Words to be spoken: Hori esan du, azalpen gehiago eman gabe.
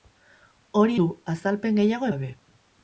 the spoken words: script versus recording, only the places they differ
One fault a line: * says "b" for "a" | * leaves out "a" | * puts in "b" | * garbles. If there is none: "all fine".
* leaves out "esan"
* leaves out "eman"